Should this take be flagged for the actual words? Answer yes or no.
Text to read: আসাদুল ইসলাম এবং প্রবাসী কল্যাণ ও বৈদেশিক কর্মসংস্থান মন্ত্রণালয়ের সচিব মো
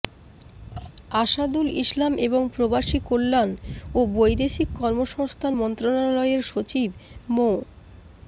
no